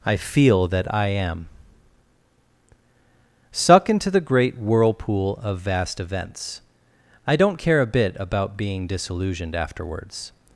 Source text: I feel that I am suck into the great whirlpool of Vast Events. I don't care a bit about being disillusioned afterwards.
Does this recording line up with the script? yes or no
yes